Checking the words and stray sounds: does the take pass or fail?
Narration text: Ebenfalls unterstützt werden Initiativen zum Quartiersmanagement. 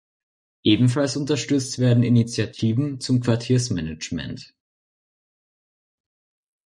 pass